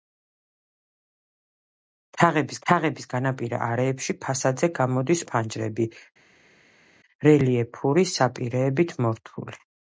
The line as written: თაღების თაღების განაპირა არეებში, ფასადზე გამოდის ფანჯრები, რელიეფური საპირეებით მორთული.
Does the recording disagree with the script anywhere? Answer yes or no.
no